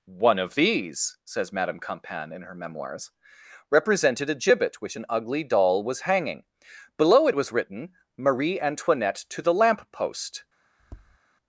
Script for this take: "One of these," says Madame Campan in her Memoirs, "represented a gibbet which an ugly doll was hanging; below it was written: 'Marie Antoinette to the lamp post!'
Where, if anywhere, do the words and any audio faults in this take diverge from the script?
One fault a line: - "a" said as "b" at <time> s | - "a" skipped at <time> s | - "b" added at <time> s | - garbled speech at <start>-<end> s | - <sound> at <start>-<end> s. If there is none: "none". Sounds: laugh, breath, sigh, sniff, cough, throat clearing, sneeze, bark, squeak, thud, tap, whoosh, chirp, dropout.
- tap at 10.8-11.2 s